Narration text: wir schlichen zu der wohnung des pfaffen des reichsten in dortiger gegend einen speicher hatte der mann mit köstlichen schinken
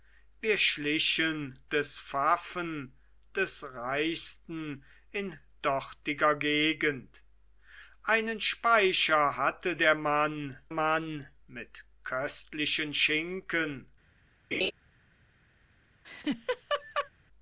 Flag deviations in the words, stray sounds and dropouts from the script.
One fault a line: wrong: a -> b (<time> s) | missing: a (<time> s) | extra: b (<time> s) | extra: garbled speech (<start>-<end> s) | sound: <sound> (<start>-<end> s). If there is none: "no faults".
missing: zu der wohnung (1.6 s)
extra: mann (10.7 s)
sound: laugh (14.5-14.7 s)
sound: laugh (16.0-17.1 s)